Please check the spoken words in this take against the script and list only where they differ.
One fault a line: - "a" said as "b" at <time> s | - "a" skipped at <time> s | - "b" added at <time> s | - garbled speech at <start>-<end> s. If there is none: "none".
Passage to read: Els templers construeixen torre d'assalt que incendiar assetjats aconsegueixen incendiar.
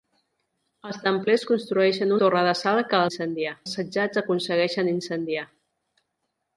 none